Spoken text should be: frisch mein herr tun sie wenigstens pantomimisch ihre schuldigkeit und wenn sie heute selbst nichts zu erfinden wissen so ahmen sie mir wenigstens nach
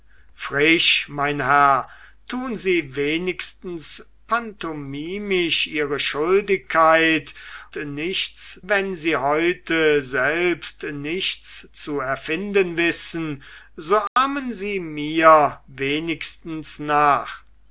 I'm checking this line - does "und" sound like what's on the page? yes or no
no